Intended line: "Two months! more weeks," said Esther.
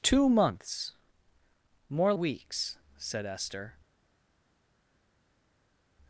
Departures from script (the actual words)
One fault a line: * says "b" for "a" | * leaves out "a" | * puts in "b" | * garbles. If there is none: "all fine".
all fine